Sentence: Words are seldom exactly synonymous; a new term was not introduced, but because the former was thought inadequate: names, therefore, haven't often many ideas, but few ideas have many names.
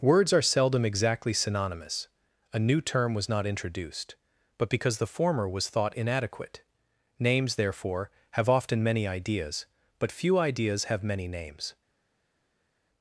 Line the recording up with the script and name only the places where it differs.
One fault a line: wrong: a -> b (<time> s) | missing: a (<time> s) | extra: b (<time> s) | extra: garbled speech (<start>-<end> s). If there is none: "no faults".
wrong: haven't -> have (8.3 s)